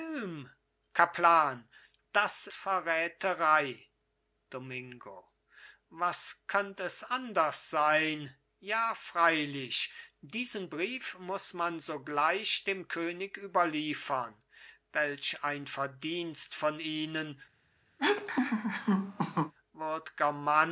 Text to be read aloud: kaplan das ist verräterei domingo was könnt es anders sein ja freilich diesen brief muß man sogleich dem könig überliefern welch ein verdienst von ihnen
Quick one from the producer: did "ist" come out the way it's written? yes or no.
no